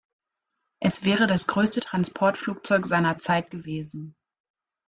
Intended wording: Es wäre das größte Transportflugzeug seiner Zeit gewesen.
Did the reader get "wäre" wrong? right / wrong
right